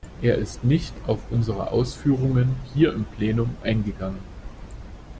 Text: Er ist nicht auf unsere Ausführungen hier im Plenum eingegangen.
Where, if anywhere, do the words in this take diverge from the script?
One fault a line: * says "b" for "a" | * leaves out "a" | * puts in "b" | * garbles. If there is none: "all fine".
all fine